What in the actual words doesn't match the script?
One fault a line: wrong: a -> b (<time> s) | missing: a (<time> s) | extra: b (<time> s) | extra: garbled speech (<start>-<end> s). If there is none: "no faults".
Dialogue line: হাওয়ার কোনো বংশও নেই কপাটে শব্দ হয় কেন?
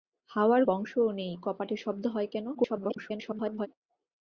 missing: কোনো (0.6 s)
extra: garbled speech (2.5-3.7 s)